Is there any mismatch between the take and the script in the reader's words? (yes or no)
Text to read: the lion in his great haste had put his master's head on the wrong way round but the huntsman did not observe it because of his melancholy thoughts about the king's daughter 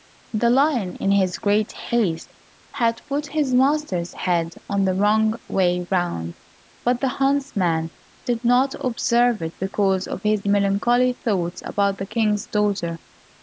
no